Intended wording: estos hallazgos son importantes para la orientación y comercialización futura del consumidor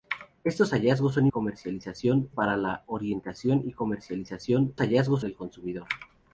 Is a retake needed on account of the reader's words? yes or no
yes